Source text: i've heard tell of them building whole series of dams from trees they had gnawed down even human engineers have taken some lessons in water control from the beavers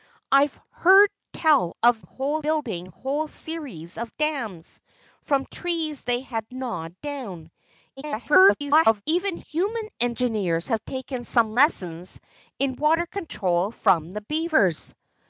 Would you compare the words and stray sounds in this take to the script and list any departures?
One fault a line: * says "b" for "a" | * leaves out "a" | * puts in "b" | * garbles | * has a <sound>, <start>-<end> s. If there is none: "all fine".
* says "whole" for "them"
* garbles